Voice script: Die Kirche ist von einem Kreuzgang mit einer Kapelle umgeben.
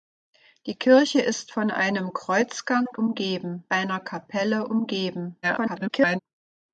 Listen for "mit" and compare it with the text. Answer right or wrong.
wrong